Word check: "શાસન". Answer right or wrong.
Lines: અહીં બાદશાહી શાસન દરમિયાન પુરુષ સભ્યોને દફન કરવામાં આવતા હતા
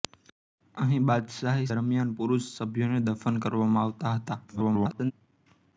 wrong